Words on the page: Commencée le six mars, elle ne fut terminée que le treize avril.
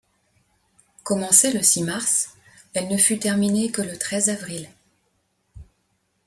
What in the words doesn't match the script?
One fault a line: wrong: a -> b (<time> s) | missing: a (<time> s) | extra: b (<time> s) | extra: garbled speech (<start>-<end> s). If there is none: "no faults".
no faults